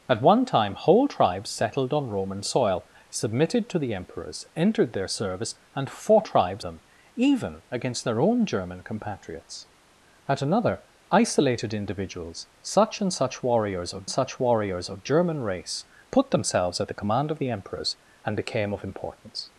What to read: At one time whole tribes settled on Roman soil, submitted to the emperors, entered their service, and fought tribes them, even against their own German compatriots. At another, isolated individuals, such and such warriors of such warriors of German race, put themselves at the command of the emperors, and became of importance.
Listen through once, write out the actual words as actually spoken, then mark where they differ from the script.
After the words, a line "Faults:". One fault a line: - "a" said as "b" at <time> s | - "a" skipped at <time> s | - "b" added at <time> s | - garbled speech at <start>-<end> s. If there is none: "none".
At one time whole tribes settled on Roman soil, submitted to the emperors, entered their service, and fought tribes them, even against their own German compatriots. At another, isolated individuals, such and such warriors of such warriors of German race, put themselves at the command of the emperors, and became of importance.
Faults:
none